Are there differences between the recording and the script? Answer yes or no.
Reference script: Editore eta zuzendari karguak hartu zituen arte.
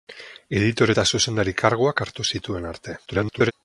yes